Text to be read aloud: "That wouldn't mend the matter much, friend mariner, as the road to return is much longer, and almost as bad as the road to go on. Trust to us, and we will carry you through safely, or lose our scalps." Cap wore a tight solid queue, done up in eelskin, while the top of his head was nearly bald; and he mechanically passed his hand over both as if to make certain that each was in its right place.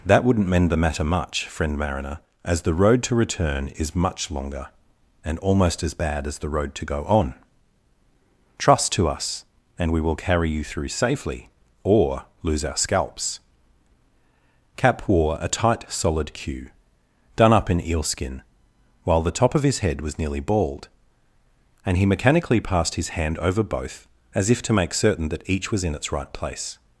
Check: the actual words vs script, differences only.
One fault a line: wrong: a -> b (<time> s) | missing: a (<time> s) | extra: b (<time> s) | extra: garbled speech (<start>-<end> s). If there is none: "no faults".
no faults